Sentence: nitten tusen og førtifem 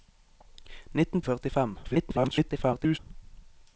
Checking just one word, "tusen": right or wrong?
wrong